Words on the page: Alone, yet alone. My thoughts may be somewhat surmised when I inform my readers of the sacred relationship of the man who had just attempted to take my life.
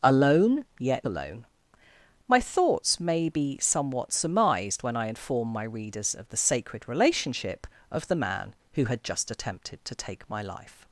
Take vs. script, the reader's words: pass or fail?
pass